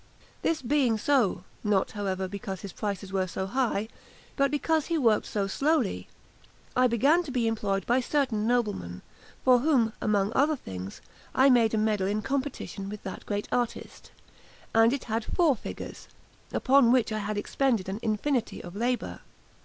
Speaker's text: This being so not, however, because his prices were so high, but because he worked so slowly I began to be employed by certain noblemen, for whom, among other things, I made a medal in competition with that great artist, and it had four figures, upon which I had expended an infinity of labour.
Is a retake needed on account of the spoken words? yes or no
no